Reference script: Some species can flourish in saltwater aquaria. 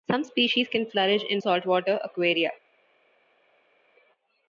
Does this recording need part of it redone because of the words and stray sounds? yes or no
no